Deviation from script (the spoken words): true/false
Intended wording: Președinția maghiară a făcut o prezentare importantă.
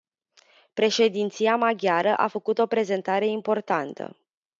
false